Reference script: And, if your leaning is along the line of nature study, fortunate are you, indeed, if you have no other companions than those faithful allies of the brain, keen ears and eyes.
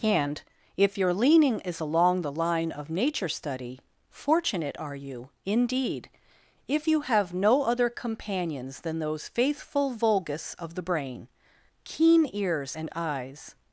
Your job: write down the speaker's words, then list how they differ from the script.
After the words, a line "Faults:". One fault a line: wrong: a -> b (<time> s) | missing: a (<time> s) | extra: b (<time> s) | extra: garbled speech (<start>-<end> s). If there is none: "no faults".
And, if your leaning is along the line of nature study, fortunate are you, indeed, if you have no other companions than those faithful vulgus of the brain, keen ears and eyes.
Faults:
wrong: allies -> vulgus (9.9 s)